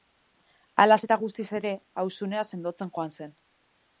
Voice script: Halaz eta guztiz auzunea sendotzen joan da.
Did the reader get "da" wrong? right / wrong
wrong